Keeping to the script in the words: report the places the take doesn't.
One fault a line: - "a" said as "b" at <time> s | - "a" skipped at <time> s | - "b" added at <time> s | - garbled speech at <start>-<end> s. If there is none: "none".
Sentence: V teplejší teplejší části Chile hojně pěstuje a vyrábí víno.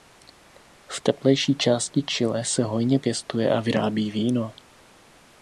- "teplejší" skipped at 1.6 s
- "se" added at 2.5 s